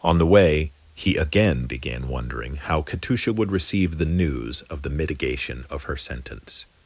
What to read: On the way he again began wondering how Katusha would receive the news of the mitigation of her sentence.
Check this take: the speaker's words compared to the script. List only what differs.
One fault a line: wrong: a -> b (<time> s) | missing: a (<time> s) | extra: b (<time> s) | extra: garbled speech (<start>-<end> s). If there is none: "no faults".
no faults